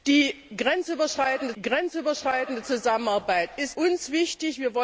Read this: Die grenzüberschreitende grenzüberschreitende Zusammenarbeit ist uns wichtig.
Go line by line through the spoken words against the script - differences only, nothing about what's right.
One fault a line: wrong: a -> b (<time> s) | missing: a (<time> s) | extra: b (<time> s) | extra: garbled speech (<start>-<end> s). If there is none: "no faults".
no faults